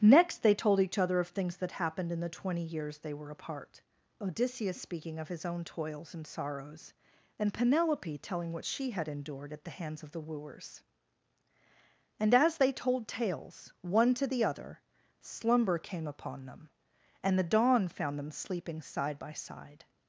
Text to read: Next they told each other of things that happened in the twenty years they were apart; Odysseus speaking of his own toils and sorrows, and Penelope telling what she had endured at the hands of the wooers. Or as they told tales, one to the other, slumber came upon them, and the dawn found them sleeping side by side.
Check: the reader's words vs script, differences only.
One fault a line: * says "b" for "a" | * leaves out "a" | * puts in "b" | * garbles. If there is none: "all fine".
* says "And" for "Or"